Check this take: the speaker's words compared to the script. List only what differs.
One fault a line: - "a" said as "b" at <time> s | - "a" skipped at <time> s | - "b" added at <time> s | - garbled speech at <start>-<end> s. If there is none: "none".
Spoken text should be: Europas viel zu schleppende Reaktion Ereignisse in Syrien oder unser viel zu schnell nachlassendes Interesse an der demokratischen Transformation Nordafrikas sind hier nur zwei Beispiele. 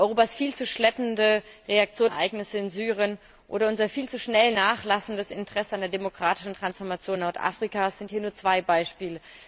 none